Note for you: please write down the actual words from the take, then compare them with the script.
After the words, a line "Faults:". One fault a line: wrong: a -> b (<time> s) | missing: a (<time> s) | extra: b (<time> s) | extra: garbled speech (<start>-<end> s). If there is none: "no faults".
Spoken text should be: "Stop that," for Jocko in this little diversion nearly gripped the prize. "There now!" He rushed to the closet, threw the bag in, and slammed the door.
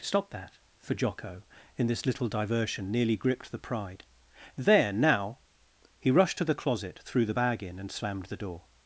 "Stop that," for Jocko in this little diversion nearly gripped the pride. "There now!" He rushed to the closet, threw the bag in, and slammed the door.
Faults:
wrong: prize -> pride (3.6 s)